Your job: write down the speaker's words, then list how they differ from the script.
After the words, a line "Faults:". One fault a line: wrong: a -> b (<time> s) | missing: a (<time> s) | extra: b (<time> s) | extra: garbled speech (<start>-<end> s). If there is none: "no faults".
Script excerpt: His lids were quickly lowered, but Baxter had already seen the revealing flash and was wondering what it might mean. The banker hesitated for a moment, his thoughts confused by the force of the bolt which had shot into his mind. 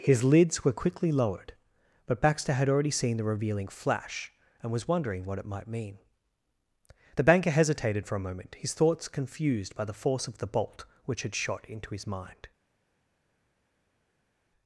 His lids were quickly lowered, but Baxter had already seen the revealing flash and was wondering what it might mean. The banker hesitated for a moment, his thoughts confused by the force of the bolt which had shot into his mind.
Faults:
no faults